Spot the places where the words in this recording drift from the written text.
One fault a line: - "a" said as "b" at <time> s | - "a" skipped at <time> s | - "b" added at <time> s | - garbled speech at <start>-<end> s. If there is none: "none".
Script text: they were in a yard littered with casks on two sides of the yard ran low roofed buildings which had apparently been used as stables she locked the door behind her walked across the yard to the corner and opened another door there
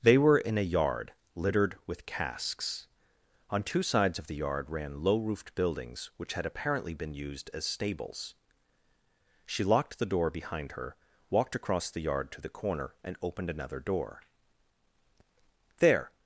none